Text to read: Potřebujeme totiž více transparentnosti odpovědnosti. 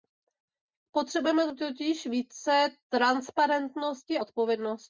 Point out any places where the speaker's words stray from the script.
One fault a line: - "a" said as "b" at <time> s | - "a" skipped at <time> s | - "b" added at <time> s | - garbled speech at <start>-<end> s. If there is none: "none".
none